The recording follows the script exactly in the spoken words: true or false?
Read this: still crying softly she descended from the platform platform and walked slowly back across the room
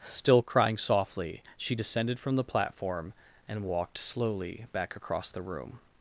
false